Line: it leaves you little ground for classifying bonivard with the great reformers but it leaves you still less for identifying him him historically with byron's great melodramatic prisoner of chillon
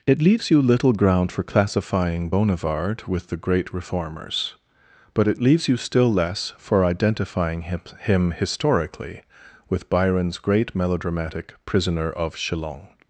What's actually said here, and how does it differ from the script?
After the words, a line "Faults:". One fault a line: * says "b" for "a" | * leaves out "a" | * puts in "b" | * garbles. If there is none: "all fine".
it leaves you little ground for classifying bonivard with the great reformers but it leaves you still less for identifying him him historically with byron's great melodramatic prisoner of chillon
Faults:
all fine